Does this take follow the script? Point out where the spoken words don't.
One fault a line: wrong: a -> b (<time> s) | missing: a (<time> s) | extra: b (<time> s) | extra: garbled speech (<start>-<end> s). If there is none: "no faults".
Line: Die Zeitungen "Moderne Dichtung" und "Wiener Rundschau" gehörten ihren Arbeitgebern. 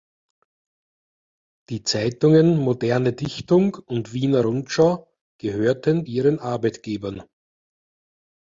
no faults